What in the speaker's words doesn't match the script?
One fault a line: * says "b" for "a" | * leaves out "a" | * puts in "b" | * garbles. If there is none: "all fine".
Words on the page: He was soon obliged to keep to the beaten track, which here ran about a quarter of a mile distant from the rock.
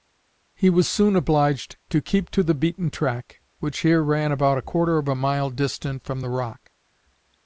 all fine